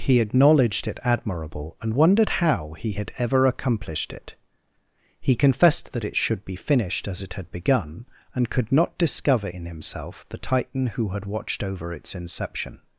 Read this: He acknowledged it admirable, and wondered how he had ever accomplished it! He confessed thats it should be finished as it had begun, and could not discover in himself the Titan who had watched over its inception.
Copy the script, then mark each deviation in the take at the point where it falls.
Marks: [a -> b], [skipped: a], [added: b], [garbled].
He acknowledged it admirable, and wondered how he had ever accomplished it! He confessed [thats -> that] it should be finished as it had begun, and could not discover in himself the Titan who had watched over its inception.